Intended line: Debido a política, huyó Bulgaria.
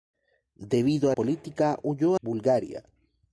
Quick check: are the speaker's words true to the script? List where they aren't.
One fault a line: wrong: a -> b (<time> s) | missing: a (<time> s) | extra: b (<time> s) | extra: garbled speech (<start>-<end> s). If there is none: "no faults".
no faults